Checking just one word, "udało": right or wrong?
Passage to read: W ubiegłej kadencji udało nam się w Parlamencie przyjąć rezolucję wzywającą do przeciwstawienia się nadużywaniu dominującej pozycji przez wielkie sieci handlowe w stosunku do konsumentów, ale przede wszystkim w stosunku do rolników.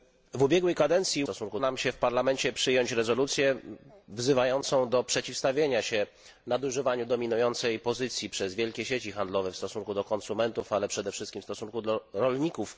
wrong